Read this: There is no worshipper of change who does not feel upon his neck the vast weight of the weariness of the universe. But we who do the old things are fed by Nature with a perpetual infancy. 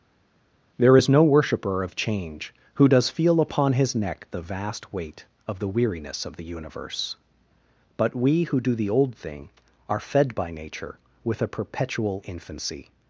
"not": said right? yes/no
no